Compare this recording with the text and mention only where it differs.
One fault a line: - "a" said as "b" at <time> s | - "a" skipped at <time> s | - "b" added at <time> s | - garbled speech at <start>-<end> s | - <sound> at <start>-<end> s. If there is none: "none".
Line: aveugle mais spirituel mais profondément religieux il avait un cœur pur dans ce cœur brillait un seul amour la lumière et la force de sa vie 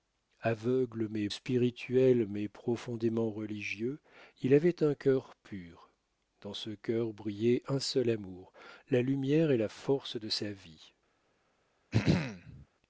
- throat clearing at 11.9-12.7 s